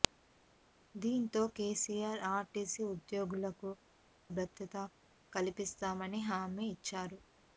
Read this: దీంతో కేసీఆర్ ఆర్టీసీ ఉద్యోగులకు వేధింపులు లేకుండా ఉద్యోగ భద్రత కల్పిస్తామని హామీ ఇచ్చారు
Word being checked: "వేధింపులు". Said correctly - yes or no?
no